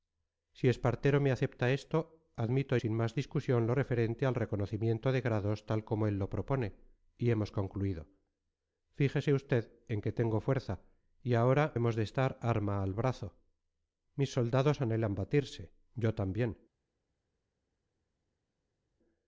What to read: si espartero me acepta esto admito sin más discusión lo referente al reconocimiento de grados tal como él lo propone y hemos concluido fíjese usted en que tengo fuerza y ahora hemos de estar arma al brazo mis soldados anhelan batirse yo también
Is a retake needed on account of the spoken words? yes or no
no